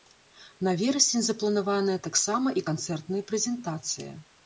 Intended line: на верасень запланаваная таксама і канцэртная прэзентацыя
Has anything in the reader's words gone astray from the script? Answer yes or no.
no